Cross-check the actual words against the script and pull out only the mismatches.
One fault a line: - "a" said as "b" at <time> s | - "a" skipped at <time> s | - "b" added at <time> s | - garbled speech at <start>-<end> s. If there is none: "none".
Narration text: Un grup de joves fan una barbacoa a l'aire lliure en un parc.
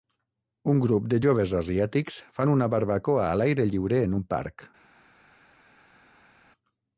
- "asiàtics" added at 1.6 s